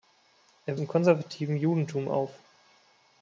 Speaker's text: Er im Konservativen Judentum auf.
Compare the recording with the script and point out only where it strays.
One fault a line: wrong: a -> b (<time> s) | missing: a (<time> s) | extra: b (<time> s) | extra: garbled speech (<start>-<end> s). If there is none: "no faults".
no faults